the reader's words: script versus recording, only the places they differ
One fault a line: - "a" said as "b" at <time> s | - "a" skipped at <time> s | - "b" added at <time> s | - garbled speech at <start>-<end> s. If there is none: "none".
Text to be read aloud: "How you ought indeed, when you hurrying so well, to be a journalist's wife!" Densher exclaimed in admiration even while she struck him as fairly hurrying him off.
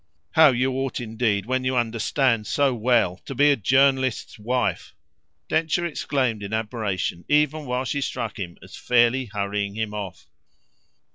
- "hurrying" said as "understand" at 1.8 s